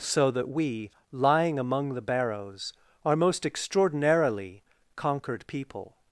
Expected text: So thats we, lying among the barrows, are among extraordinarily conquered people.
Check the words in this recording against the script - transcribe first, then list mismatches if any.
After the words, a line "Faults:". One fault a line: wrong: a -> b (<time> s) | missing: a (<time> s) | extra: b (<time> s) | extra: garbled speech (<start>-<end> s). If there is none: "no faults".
So that we, lying among the barrows, are most extraordinarily conquered people.
Faults:
wrong: thats -> that (0.3 s)
wrong: among -> most (3.2 s)